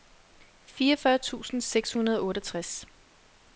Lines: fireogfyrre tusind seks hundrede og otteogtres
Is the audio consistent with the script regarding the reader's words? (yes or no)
yes